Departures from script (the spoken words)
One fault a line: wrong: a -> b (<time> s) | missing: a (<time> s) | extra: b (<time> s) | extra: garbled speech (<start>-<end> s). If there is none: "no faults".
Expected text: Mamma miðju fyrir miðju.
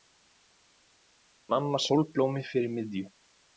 wrong: miðju -> sólblómi (1.9 s)